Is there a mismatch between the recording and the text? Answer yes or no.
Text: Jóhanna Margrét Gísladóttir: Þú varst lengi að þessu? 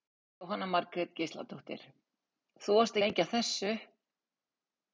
no